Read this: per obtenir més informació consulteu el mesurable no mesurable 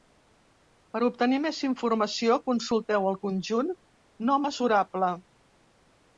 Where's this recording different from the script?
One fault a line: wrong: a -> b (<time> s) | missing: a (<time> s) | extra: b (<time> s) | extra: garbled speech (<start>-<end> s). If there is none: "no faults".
wrong: mesurable -> conjunt (3.3 s)